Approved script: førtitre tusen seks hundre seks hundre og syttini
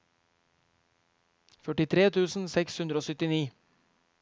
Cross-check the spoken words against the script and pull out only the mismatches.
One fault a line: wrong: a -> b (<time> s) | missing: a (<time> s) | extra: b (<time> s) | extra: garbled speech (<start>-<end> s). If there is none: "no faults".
missing: seks hundre (3.0 s)